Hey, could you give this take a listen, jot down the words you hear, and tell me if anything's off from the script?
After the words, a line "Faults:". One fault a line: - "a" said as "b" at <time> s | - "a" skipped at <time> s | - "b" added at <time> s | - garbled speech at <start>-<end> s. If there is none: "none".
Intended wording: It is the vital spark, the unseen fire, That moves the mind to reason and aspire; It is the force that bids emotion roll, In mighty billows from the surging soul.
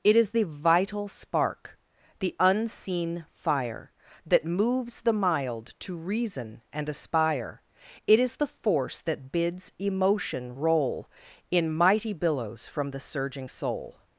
It is the vital spark, the unseen fire, That moves the mild to reason and aspire; It is the force that bids emotion roll, In mighty billows from the surging soul.
Faults:
- "mind" said as "mild" at 5.1 s